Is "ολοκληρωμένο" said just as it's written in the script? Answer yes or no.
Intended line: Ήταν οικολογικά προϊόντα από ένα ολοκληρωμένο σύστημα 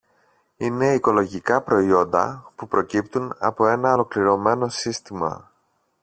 yes